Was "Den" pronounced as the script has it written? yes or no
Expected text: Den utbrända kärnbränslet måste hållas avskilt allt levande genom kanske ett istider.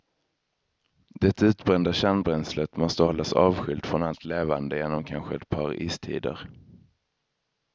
no